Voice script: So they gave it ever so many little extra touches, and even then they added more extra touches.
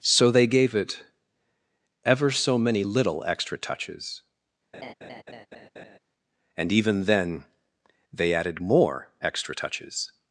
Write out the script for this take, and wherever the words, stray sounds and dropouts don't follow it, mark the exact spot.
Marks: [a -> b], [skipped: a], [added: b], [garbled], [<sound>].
So they gave it ever so many little extra touches, [laugh] and even then they added more extra touches.